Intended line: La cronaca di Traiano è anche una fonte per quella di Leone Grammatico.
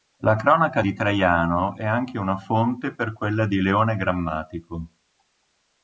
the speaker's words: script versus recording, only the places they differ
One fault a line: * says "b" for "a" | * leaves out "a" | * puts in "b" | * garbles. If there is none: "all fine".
all fine